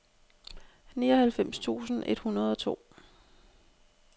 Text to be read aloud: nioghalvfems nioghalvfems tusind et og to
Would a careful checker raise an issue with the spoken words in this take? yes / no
yes